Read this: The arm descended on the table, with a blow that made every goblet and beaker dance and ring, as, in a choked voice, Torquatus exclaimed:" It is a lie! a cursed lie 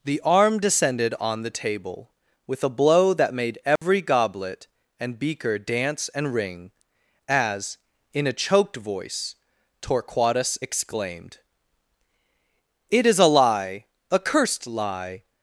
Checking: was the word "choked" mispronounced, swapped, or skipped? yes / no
no